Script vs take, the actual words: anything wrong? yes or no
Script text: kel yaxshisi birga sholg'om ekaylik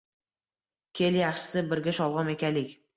no